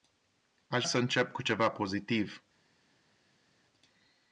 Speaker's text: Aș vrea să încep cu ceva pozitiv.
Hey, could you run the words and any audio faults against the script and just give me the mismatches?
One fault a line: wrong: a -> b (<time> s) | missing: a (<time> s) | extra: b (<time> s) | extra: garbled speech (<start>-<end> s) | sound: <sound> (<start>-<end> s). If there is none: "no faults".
missing: vrea (0.9 s)